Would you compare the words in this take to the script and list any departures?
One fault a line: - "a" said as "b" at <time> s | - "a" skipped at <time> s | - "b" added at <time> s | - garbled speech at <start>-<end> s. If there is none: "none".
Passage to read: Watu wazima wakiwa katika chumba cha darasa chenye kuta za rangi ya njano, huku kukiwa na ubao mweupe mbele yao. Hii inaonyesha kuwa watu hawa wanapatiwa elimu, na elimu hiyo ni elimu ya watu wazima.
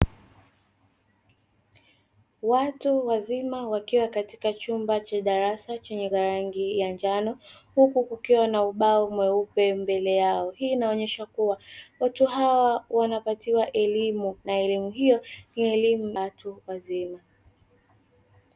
- "kuta" skipped at 6.1 s
- "ya" skipped at 16.1 s